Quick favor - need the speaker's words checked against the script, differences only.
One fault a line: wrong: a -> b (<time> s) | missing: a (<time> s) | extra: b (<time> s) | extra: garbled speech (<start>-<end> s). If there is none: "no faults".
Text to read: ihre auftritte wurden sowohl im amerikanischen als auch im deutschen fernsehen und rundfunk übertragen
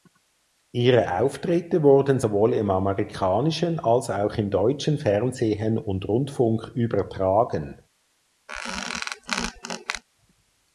no faults